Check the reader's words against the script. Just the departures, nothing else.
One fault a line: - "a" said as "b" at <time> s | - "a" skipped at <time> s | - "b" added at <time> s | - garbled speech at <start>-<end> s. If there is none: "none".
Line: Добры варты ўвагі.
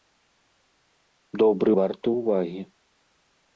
none